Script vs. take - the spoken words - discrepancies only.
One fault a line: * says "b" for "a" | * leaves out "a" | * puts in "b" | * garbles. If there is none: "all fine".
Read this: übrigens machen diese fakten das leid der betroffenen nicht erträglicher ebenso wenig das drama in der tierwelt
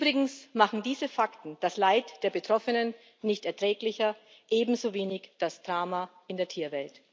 all fine